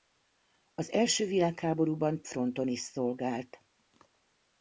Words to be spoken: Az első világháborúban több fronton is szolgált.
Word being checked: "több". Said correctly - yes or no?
no